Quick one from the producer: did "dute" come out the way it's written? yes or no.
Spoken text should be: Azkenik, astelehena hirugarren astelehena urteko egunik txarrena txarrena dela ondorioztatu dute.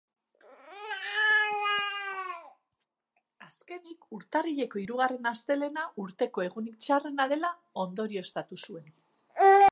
no